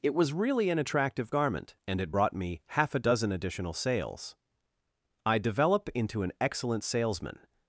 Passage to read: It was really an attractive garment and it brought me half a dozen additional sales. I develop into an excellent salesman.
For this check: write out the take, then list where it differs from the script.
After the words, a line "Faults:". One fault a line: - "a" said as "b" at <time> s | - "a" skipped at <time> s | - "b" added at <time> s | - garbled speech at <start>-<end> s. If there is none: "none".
It was really an attractive garment and it brought me half a dozen additional sales. I develop into an excellent salesman.
Faults:
none